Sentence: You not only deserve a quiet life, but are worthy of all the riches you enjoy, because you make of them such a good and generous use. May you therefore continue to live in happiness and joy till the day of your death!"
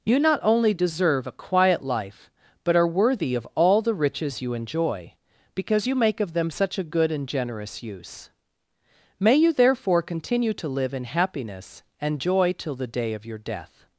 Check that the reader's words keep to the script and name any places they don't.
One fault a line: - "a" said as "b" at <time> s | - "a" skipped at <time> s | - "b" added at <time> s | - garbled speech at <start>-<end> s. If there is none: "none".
none